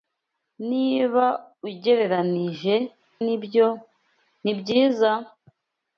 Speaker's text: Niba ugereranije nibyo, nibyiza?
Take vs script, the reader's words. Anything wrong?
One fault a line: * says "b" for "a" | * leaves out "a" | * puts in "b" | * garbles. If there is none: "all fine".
all fine